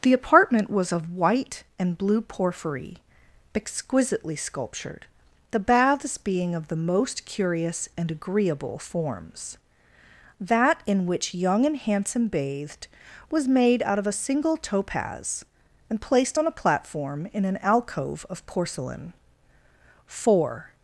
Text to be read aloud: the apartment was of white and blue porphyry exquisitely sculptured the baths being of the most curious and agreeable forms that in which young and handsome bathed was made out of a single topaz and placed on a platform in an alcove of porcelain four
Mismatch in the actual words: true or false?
false